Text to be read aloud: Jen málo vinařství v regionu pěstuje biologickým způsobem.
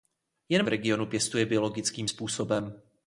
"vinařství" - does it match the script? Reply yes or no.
no